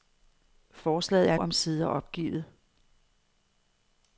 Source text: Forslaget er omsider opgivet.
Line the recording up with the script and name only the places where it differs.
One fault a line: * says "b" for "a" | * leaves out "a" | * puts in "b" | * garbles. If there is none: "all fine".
all fine